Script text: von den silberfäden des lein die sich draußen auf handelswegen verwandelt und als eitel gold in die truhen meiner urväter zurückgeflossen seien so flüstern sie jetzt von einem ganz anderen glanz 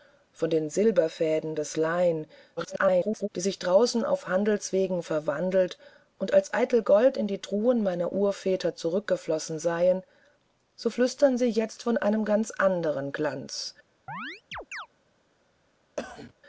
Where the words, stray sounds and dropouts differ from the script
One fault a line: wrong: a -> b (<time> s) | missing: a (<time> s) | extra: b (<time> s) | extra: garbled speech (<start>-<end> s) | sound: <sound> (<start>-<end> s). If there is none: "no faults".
extra: garbled speech (2.6-3.3 s)
sound: chirp (14.1-14.9 s)
sound: cough (16.0-16.3 s)